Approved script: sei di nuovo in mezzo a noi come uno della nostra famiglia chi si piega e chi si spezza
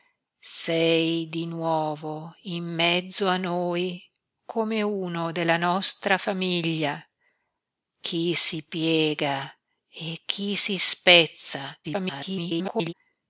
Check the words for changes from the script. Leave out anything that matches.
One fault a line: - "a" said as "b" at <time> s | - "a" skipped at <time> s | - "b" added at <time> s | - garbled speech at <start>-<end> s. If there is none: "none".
- garbled speech at 11.8-12.9 s